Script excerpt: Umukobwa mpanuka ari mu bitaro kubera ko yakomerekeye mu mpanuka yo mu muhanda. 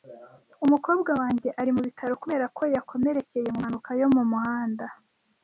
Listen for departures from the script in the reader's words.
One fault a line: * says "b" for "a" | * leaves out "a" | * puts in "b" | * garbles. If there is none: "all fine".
* says "wanjye" for "mpanuka"